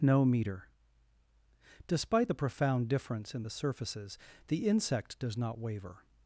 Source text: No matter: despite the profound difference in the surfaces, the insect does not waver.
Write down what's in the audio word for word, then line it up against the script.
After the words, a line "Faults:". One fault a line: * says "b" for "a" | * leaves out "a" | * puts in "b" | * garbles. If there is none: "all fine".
No meter: despite the profound difference in the surfaces, the insect does not waver.
Faults:
* says "meter" for "matter"